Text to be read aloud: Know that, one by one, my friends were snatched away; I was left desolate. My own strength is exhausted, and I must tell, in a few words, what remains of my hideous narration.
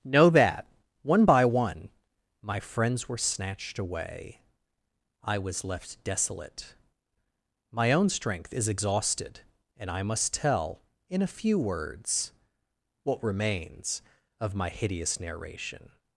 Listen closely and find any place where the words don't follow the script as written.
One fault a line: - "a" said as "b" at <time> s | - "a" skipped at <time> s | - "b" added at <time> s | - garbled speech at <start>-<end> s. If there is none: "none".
none